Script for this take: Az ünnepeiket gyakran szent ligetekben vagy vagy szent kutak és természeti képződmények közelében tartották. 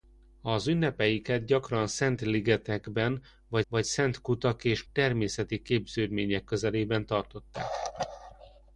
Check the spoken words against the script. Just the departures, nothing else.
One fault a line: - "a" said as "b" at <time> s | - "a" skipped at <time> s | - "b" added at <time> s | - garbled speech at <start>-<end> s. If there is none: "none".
none